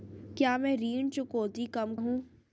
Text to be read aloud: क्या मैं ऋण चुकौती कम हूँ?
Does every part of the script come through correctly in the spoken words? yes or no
yes